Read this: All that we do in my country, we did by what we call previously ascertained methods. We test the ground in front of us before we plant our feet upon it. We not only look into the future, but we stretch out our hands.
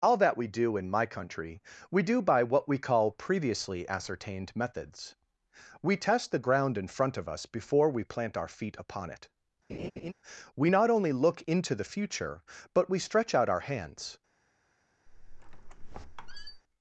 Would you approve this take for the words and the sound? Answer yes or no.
no